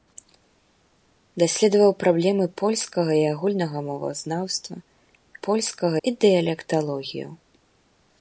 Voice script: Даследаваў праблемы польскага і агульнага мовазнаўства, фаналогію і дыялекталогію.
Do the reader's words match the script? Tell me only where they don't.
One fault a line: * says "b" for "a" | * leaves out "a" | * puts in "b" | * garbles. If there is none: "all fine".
* says "польскага" for "фаналогію"